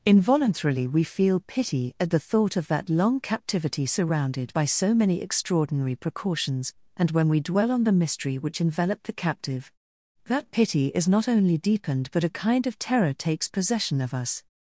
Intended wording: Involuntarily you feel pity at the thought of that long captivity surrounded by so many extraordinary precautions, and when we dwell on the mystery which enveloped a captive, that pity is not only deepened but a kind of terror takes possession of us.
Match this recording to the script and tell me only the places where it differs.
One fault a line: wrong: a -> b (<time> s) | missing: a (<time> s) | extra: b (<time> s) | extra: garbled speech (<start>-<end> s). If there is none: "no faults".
wrong: you -> we (0.9 s)
wrong: a -> the (9.1 s)